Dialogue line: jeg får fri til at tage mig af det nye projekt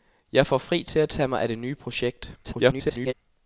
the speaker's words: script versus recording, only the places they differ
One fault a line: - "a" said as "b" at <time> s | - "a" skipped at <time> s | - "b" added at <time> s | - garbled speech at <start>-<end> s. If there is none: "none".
- garbled speech at 2.4-3.1 s